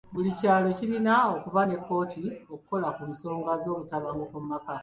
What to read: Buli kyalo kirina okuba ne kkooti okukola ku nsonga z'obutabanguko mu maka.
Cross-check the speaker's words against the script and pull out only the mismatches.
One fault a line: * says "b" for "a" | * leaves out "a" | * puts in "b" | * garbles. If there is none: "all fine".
all fine